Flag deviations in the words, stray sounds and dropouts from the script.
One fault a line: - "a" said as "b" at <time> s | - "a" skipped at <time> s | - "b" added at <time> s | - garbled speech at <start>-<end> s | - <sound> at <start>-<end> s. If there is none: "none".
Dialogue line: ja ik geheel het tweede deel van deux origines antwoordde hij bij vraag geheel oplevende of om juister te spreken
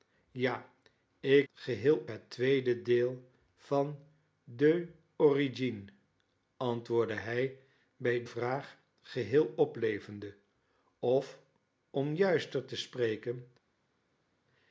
none